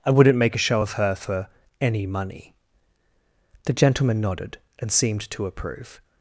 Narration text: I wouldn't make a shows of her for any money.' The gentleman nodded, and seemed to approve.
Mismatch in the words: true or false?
true